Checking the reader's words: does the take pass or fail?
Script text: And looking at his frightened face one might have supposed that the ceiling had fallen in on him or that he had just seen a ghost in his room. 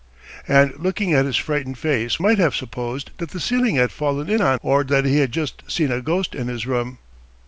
fail